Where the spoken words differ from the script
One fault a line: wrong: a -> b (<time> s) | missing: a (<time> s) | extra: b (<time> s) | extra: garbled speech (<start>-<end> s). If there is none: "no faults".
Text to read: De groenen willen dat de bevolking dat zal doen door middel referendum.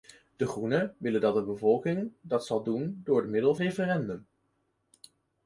no faults